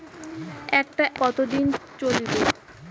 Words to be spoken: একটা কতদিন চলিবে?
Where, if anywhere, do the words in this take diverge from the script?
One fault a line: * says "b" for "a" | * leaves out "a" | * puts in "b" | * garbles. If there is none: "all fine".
all fine